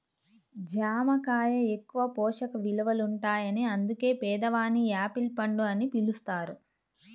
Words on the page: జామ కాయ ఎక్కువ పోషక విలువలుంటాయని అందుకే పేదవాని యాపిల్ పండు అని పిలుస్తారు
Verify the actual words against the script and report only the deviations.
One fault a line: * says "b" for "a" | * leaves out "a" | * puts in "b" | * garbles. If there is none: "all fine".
all fine